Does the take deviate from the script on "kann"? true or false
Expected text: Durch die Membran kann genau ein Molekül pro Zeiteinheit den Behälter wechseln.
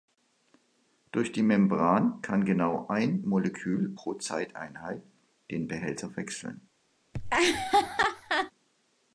false